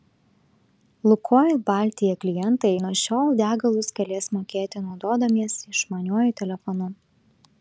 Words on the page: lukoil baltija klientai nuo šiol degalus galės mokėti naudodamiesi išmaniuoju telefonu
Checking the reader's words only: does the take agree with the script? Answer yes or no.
yes